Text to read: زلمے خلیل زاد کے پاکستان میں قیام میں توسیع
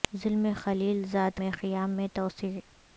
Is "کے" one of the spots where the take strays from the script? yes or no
yes